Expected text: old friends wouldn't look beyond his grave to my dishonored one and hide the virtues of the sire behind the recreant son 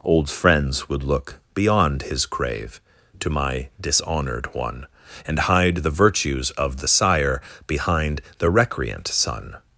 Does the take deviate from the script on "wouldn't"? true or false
true